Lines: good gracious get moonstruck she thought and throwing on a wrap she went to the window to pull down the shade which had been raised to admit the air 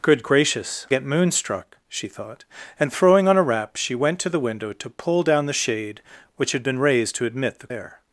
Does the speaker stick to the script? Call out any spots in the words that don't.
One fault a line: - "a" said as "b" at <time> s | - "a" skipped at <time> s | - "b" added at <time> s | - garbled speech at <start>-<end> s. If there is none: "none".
none